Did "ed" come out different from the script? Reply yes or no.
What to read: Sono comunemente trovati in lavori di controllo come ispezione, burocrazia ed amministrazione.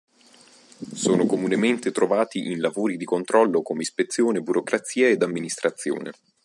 no